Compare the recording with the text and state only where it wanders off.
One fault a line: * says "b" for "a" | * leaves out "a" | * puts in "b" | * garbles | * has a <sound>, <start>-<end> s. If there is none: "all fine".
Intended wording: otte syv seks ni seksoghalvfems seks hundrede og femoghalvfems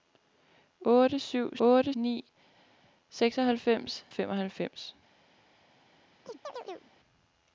* says "otte" for "seks"
* leaves out "seks hundrede og"
* has a chirp, 6.3-6.9 s